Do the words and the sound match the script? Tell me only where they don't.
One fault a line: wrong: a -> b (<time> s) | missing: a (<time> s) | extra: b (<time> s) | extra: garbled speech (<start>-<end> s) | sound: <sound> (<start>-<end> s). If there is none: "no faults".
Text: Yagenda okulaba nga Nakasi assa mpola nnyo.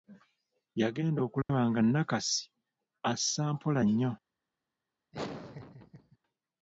sound: dropout (1.4-1.5 s)
sound: laugh (5.1-6.2 s)